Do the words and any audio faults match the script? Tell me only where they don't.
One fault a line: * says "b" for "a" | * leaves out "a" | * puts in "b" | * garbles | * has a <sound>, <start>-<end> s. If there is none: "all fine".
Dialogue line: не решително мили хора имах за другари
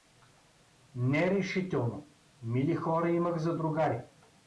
all fine